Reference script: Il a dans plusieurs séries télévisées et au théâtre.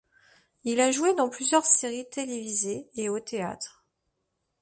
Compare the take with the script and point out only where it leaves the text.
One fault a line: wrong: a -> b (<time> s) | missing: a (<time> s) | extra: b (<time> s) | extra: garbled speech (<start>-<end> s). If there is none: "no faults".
extra: joué (0.9 s)